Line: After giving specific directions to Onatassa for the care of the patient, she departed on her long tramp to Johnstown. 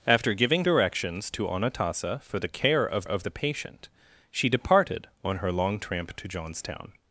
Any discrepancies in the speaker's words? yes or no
yes